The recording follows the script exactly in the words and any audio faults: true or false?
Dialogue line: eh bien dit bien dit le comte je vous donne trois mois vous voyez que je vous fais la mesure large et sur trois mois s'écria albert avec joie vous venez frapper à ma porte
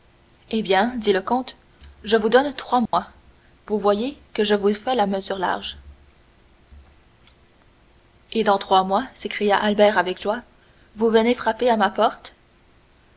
false